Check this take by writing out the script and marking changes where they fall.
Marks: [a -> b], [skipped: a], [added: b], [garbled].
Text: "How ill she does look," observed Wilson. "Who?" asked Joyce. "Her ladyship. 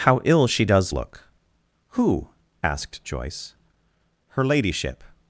"How ill she does look," [skipped: observed Wilson.] "Who?" asked Joyce. "Her ladyship.